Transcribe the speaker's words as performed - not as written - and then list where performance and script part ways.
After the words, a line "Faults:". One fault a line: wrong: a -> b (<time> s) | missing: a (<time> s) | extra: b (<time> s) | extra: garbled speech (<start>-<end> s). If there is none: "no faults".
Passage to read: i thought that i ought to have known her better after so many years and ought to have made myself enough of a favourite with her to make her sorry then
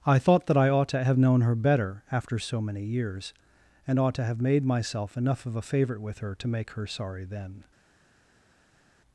i thought that i ought to have known her better after so many years and ought to have made myself enough of a favourite with her to make her sorry then
Faults:
no faults